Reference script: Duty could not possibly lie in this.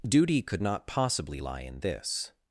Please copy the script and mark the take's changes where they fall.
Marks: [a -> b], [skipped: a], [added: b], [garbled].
Duty could not possibly lie in this.